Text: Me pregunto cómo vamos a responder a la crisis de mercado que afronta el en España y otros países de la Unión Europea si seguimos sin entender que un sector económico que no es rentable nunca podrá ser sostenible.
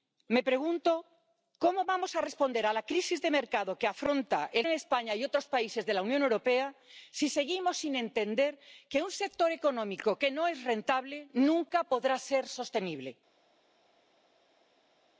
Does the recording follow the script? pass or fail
pass